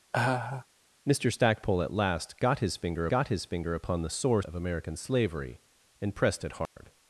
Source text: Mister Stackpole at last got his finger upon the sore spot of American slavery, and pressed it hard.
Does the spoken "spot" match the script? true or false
false